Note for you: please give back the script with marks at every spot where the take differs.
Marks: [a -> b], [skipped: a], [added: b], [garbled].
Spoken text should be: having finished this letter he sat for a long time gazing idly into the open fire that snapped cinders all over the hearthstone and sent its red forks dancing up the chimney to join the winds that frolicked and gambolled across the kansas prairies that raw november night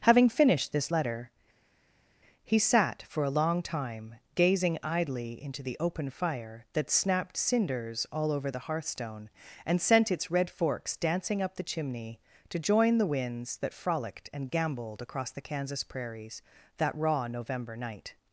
having finished this letter he sat for a long time gazing idly into the open fire that snapped cinders all over the hearthstone and sent its red forks dancing up the chimney to join the winds that frolicked and gambolled across the kansas prairies that raw november night